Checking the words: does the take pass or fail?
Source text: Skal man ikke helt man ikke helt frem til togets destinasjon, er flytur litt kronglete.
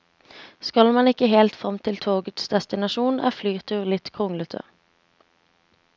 fail